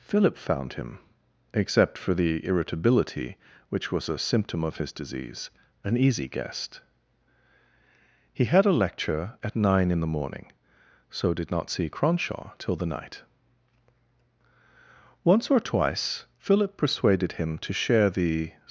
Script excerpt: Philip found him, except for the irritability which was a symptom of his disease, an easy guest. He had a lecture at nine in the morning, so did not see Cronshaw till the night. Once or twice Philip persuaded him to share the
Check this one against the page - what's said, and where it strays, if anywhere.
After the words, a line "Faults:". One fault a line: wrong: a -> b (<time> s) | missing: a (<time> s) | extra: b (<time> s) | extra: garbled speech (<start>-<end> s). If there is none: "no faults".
Philip found him, except for the irritability which was a symptom of his disease, an easy guest. He had a lecture at nine in the morning, so did not see Cronshaw till the night. Once or twice Philip persuaded him to share the
Faults:
no faults